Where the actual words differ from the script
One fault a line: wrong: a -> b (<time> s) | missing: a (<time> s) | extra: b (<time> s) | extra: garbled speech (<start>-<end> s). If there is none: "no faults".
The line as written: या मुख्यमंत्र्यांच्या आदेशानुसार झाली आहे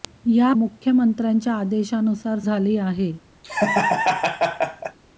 no faults